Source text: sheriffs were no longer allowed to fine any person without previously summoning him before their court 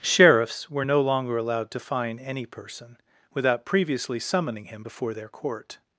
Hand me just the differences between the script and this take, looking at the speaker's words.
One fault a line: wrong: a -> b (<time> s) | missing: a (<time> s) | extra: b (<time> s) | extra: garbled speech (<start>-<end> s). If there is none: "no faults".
no faults